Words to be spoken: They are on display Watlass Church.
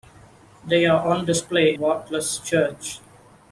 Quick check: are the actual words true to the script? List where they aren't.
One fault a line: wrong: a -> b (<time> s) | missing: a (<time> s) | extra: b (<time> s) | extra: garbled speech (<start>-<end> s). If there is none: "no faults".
no faults